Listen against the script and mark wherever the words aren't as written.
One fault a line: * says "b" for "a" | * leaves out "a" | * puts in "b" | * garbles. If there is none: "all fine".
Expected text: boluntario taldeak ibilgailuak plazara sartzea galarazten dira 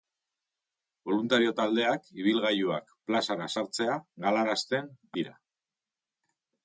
all fine